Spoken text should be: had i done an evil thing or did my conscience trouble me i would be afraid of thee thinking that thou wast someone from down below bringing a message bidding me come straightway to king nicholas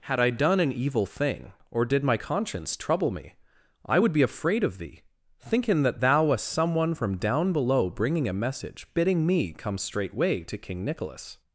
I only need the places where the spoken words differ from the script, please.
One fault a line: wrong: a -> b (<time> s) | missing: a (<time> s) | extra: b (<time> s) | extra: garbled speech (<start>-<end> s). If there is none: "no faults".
no faults